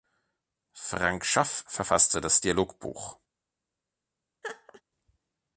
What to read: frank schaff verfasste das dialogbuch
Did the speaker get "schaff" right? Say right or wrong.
right